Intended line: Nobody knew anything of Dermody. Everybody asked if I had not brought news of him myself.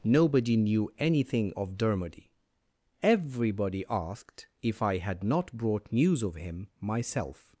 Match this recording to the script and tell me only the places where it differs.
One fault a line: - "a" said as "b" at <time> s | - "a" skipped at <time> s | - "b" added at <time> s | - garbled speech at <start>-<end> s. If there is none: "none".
none